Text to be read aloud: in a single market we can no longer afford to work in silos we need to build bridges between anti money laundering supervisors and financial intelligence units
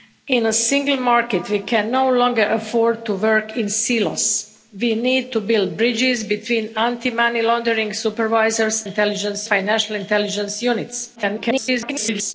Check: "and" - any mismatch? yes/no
yes